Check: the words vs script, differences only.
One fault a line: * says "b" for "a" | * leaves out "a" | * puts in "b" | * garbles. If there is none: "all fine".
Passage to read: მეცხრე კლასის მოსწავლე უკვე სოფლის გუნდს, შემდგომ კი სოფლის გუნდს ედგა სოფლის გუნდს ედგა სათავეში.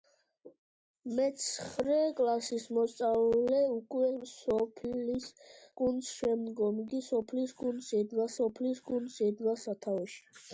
all fine